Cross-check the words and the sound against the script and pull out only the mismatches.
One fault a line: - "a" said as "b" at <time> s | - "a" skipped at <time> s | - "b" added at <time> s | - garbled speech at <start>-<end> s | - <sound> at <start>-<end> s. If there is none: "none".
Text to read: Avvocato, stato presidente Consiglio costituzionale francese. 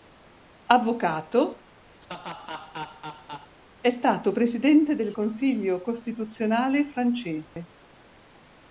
- laugh at 2.0-3.5 s
- "è" added at 3.8 s
- "del" added at 4.9 s
- dropout at 7.4-7.6 s